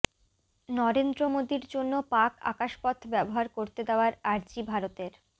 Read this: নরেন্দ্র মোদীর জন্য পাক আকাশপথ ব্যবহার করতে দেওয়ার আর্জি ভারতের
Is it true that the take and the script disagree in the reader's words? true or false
false